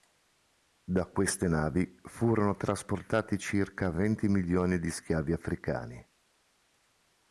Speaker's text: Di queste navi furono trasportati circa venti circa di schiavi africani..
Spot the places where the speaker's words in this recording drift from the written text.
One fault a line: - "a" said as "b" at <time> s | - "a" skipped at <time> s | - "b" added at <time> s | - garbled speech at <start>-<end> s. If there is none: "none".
- "Di" said as "Da" at 0.8 s
- "circa" said as "milioni" at 4.3 s